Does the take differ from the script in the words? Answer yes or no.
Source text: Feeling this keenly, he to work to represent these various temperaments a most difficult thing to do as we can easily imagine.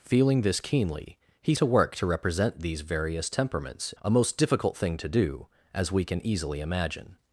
no